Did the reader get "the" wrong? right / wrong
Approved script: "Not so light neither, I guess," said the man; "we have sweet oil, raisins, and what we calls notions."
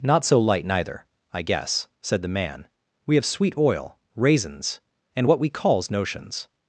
right